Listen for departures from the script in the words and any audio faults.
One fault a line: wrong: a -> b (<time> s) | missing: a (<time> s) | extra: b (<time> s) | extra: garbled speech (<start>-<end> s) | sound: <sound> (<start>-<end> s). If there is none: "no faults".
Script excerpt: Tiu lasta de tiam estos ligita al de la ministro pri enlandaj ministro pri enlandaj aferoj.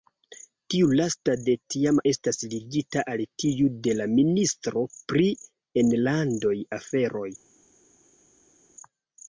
wrong: estos -> estas (2.1 s)
extra: tiu (3.4 s)
missing: ministro pri enlandaj (6.6 s)